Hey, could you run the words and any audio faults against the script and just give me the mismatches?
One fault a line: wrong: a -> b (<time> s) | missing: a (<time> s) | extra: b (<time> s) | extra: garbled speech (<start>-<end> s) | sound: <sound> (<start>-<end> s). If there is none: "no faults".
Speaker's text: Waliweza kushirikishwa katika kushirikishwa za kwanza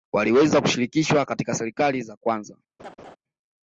wrong: kushirikishwa -> serikali (1.5 s)
sound: laugh (2.8-3.2 s)